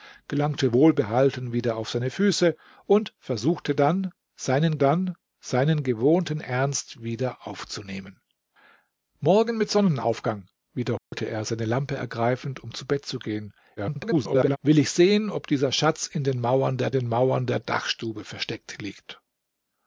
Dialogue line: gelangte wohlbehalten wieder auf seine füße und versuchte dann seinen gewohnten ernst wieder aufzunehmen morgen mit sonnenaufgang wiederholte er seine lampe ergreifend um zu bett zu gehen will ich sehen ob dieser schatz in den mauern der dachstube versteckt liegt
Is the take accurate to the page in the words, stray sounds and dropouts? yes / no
no